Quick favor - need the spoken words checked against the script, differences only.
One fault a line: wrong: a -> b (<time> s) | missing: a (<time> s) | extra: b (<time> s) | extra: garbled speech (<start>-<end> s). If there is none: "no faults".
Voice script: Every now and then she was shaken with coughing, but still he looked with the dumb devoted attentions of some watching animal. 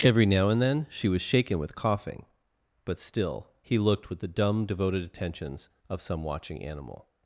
no faults